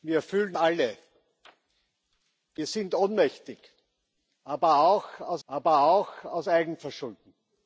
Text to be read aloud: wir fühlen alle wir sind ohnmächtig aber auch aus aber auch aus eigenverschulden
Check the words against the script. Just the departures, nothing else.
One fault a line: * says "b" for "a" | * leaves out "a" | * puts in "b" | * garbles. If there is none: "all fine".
all fine